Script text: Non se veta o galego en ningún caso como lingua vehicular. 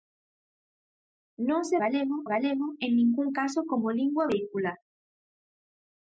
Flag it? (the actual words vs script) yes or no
yes